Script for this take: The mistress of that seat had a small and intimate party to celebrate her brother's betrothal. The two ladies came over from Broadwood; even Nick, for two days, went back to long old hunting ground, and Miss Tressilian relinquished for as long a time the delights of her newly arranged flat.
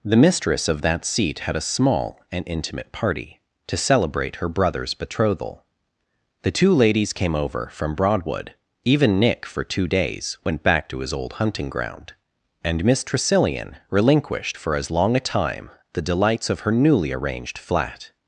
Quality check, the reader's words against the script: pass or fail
fail